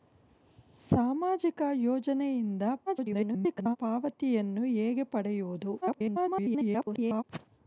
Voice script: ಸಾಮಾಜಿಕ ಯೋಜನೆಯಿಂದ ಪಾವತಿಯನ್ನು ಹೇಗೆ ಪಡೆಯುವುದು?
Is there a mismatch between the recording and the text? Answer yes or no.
yes